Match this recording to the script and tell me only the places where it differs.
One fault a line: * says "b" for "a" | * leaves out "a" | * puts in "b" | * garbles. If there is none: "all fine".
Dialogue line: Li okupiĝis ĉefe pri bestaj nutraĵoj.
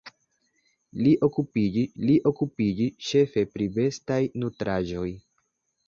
* puts in "li okupiĝis"